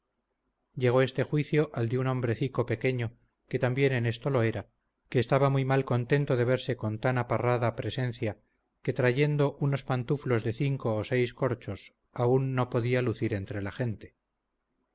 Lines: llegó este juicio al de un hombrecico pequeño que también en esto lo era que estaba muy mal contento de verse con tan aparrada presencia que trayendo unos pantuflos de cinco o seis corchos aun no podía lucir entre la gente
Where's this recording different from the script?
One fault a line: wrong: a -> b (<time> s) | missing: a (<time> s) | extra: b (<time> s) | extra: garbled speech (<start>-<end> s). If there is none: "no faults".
no faults